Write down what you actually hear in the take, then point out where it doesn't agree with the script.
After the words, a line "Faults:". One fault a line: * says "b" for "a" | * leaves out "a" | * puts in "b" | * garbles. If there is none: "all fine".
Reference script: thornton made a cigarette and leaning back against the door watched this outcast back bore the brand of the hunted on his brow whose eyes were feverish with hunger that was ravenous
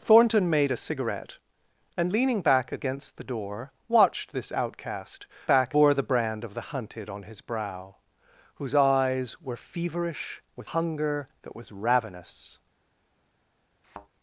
thornton made a cigarette and leaning back against the door watched this outcast back bore the brand of the hunted on his brow whose eyes were feverish with hunger that was ravenous
Faults:
all fine